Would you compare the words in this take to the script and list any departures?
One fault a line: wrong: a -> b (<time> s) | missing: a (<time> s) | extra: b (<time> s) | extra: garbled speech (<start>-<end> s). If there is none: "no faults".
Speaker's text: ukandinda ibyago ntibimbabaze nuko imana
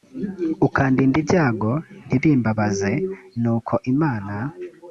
no faults